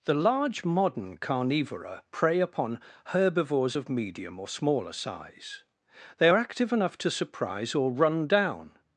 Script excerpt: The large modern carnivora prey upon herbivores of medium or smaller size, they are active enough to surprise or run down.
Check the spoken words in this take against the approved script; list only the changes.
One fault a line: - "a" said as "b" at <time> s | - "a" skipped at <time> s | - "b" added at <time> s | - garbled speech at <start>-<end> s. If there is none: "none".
none